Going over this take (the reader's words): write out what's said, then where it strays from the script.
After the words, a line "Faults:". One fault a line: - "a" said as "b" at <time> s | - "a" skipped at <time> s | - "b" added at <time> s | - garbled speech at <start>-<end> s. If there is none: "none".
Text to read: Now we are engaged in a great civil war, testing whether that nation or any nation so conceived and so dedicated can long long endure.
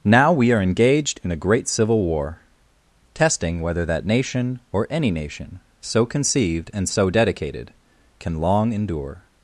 Now we are engaged in a great civil war, testing whether that nation or any nation so conceived and so dedicated can long endure.
Faults:
- "long" skipped at 8.7 s